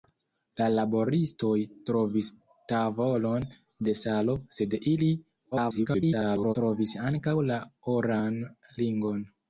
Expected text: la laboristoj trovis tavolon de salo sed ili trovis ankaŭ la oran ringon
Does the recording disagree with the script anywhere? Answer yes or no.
yes